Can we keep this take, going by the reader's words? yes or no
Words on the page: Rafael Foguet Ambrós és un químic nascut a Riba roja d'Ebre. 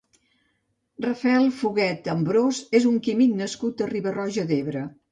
yes